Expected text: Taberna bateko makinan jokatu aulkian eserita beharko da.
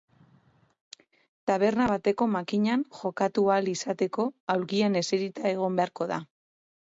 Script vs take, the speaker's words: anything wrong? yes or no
yes